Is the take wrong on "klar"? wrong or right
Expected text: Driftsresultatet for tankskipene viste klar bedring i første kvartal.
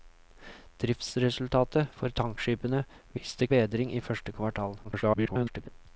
wrong